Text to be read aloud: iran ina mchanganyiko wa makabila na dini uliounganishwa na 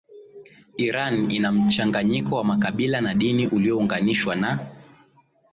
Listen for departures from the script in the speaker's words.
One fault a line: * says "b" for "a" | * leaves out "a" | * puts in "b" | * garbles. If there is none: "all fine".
all fine